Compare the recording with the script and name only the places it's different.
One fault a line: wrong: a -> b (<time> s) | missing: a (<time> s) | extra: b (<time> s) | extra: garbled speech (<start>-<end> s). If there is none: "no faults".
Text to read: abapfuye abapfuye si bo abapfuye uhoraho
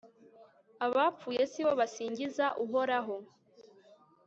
missing: abapfuye (1.4 s)
wrong: abapfuye -> basingiza (1.8 s)